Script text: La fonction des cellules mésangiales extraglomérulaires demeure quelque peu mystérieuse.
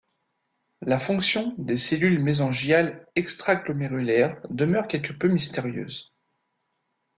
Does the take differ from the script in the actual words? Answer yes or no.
no